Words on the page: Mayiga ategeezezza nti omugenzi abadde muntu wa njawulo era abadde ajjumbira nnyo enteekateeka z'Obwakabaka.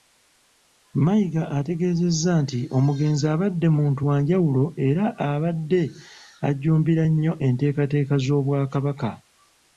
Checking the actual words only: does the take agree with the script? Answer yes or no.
yes